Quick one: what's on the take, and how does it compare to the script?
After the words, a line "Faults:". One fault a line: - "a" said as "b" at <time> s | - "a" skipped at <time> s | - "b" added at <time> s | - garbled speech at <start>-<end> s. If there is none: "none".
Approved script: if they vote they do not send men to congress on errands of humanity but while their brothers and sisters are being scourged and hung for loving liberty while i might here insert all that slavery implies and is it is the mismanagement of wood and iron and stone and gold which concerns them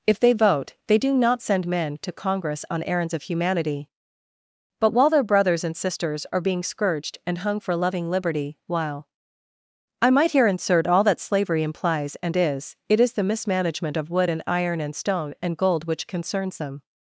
if they vote they do not send men to congress on errands of humanity but while their brothers and sisters are being scourged and hung for loving liberty while i might here insert all that slavery implies and is it is the mismanagement of wood and iron and stone and gold which concerns them
Faults:
none